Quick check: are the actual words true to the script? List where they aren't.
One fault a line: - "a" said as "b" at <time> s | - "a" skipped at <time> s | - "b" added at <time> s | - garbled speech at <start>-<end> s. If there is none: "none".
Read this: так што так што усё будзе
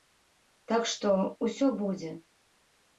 - "так што" skipped at 1.1 s